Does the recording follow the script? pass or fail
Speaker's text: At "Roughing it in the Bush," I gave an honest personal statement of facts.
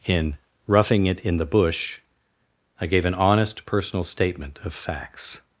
fail